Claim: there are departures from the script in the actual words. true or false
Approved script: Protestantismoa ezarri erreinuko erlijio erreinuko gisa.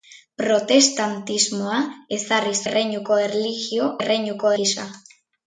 false